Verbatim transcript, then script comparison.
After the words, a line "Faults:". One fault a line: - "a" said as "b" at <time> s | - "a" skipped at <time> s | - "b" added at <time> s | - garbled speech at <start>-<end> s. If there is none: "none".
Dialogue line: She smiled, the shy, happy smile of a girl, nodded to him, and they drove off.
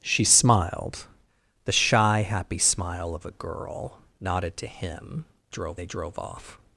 She smiled, the shy, happy smile of a girl, nodded to him, drove they drove off.
Faults:
- "and" said as "drove" at 5.5 s